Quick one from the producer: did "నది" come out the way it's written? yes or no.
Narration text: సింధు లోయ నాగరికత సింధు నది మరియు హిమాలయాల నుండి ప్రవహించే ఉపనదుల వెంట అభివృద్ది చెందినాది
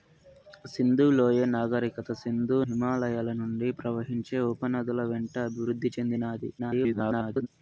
no